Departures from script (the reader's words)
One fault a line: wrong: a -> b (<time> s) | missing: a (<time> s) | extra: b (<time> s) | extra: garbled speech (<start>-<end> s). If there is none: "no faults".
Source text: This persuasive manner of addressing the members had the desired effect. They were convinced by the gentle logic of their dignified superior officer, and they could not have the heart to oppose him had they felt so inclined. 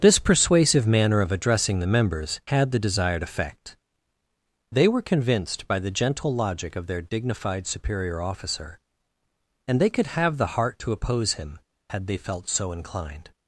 missing: not (10.1 s)